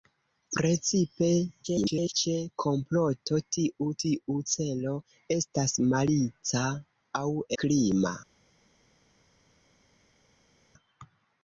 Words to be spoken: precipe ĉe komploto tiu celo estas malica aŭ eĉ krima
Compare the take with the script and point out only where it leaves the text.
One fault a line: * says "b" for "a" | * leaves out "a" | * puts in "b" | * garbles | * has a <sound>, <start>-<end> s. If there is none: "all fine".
* garbles
* puts in "tiu"
* leaves out "eĉ"